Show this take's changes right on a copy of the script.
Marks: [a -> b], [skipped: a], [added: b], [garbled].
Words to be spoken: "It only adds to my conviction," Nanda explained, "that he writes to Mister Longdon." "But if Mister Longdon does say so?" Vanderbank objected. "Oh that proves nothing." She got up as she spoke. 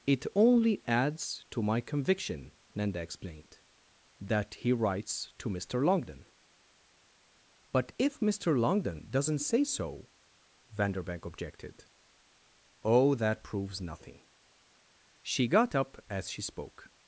"It only adds to my conviction," Nanda explained, "that he writes to Mister Longdon." "But if Mister Longdon [does -> doesn't] say so?" Vanderbank objected. "Oh that proves nothing." She got up as she spoke.